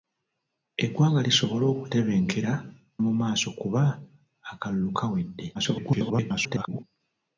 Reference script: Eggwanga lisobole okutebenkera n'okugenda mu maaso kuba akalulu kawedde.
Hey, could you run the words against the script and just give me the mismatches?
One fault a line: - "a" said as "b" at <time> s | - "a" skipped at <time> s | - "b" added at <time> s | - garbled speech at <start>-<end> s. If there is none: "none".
- "n'okugenda" skipped at 2.5 s
- garbled speech at 5.5-6.8 s